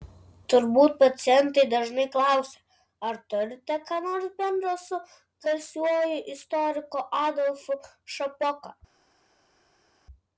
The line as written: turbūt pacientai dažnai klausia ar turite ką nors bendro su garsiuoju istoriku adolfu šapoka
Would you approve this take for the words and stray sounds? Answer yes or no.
yes